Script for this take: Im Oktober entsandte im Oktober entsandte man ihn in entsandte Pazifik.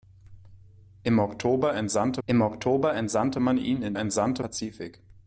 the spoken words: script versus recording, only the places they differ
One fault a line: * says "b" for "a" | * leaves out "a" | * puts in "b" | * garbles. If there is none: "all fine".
all fine